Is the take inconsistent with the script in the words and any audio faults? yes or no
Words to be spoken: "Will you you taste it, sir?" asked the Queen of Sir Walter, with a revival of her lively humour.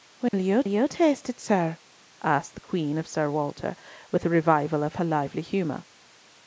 yes